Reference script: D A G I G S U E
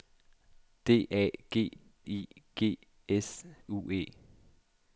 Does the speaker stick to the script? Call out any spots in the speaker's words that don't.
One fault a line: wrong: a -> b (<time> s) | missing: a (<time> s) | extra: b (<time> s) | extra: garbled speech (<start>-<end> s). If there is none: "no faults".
no faults